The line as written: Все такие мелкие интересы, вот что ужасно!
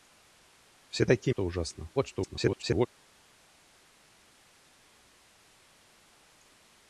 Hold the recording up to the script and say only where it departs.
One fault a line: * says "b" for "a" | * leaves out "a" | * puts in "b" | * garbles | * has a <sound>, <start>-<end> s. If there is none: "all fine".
* leaves out "мелкие интересы вот"
* garbles